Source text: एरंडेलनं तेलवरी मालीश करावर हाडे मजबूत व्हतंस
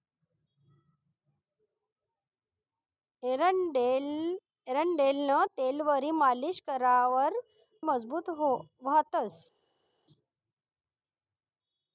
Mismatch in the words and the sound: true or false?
true